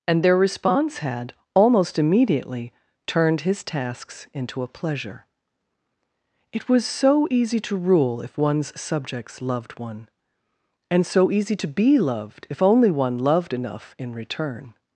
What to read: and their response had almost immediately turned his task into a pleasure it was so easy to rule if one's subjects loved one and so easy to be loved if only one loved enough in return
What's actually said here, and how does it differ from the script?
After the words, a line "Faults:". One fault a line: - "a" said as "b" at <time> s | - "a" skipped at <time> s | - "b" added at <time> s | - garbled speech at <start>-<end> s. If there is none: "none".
and their response had almost immediately turned his tasks into a pleasure it was so easy to rule if one's subjects loved one and so easy to be loved if only one loved enough in return
Faults:
- "task" said as "tasks" at 3.6 s